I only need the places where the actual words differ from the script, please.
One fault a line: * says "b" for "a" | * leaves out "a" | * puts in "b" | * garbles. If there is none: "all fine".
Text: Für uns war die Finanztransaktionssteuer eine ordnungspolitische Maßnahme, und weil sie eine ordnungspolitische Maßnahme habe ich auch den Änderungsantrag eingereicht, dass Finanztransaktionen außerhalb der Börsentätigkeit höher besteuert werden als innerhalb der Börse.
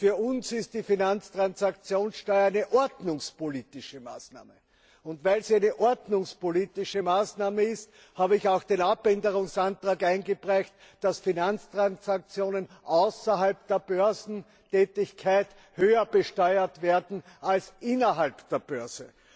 * says "ist" for "war"
* puts in "ist"